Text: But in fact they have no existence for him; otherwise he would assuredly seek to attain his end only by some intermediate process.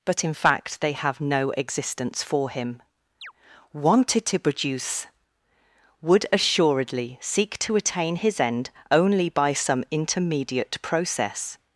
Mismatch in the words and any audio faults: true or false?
true